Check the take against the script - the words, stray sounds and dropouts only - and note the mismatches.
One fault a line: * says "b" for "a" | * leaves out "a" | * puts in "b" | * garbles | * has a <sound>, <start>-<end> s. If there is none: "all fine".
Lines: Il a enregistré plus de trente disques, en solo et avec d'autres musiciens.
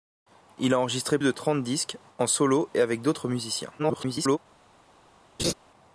* leaves out "plus"
* garbles
* has a laugh, 5.4-5.5 s